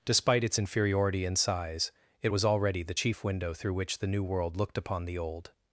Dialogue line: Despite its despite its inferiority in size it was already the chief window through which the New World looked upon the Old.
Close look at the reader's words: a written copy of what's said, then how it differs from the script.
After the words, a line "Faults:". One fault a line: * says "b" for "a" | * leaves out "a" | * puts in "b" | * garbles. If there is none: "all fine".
Despite its inferiority in size it was already the chief window through which the New World looked upon the Old.
Faults:
* leaves out "despite its"